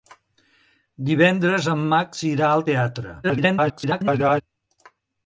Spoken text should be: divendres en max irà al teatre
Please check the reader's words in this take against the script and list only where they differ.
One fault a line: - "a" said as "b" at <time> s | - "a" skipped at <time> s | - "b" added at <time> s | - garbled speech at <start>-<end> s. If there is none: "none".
- garbled speech at 3.2-4.4 s